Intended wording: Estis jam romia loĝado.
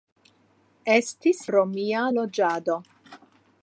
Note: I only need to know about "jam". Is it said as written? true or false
false